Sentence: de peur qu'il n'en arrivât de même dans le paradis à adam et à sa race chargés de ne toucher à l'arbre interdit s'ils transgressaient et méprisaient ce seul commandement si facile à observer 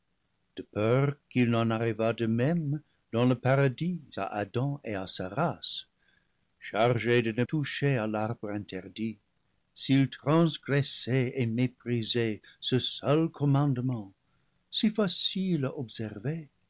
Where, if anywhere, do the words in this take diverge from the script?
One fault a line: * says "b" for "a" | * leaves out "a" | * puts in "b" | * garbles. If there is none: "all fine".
all fine